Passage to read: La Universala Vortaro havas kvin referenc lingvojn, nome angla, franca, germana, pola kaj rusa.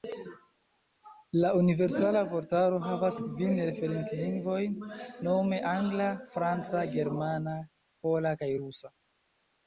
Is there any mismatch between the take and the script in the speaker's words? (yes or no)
no